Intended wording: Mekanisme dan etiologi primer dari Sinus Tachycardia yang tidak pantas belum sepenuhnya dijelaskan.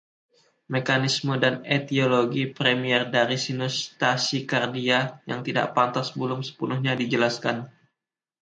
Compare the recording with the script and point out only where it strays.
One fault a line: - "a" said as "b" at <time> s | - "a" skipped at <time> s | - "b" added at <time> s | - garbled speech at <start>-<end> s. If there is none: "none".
none